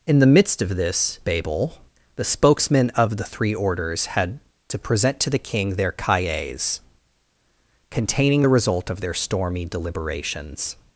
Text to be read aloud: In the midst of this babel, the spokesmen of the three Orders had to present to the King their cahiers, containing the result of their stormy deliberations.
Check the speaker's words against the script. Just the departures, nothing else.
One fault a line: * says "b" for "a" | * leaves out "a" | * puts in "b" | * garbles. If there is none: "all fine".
all fine